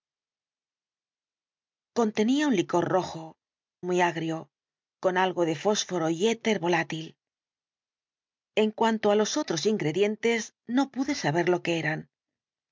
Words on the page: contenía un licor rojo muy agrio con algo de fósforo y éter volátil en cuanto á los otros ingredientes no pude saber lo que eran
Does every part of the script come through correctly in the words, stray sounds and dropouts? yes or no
yes